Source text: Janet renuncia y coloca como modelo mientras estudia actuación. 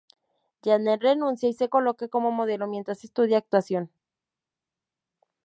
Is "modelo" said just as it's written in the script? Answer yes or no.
yes